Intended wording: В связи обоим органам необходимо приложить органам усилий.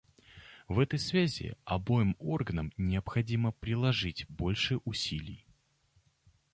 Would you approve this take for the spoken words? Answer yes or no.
no